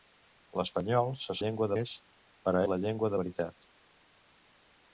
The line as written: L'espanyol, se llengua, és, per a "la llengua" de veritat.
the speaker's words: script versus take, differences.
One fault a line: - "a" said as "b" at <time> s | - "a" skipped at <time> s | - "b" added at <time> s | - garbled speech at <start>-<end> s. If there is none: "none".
none